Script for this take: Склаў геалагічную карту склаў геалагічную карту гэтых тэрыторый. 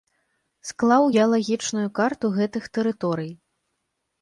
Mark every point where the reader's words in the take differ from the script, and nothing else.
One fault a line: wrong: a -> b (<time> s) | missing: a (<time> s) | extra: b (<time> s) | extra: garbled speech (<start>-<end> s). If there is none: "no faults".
missing: склаў геалагічную карту (2.3 s)